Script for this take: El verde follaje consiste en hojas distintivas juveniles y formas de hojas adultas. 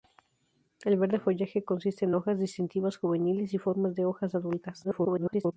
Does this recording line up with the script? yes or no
no